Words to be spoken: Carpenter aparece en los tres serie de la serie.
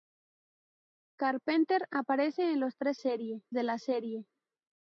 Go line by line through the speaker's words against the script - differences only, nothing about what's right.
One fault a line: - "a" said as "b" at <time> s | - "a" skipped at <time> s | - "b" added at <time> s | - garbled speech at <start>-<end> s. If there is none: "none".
none